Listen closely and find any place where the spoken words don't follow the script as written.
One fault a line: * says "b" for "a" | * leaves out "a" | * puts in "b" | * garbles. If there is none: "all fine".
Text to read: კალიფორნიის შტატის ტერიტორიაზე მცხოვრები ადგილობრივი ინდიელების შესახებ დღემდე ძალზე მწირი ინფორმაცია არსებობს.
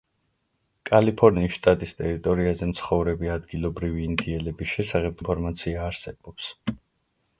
* leaves out "დღემდე ძალზე მწირი"